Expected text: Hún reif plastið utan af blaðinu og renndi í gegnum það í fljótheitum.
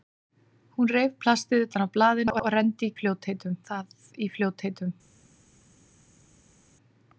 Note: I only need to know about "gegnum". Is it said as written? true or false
false